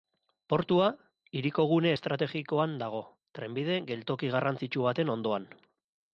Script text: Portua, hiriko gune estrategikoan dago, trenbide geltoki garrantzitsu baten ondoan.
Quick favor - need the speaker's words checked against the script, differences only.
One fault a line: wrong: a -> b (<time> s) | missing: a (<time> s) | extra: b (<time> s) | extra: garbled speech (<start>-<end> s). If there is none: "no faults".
no faults